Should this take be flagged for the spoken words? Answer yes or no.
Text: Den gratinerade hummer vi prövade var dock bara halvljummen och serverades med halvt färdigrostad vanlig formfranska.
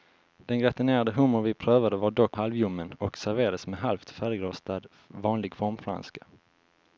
yes